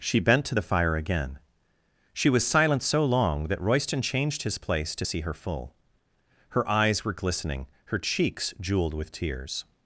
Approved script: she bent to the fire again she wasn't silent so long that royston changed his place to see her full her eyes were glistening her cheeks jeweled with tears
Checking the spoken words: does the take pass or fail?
fail